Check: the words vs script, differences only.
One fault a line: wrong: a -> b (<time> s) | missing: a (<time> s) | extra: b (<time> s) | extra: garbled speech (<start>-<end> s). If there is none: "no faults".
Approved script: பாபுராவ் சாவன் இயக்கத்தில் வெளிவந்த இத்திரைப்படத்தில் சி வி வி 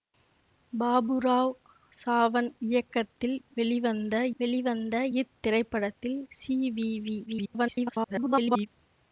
extra: வெளிவந்த (4.4 s)
extra: garbled speech (7.3-8.7 s)